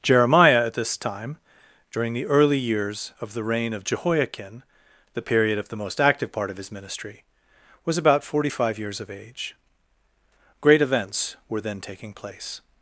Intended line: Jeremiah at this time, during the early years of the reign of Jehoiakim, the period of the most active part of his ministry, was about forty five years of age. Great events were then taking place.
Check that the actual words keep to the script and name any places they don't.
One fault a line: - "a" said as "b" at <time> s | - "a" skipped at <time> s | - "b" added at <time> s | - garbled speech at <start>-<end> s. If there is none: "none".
none